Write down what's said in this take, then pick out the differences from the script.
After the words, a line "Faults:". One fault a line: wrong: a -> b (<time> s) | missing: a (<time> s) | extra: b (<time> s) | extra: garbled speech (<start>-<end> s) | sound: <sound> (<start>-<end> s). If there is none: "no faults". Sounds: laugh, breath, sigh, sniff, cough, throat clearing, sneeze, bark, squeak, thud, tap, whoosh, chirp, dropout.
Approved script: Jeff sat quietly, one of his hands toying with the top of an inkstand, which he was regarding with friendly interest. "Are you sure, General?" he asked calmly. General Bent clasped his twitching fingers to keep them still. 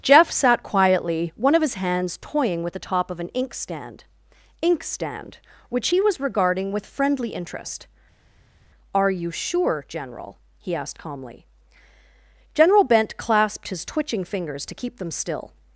Jeff sat quietly, one of his hands toying with the top of an inkstand inkstand, which he was regarding with friendly interest. "Are you sure, General?" he asked calmly. General Bent clasped his twitching fingers to keep them still.
Faults:
extra: inkstand (4.6 s)